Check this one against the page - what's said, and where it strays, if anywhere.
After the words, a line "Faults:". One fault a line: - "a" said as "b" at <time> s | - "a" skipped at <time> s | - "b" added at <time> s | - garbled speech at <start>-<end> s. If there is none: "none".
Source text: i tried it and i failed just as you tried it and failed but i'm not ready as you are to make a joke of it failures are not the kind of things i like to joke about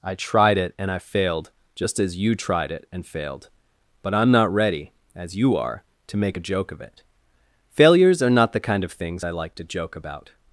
i tried it and i failed just as you tried it and failed but i'm not ready as you are to make a joke of it failures are not the kind of things i like to joke about
Faults:
none